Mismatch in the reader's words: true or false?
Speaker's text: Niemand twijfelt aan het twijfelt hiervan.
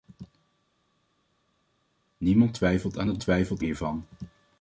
false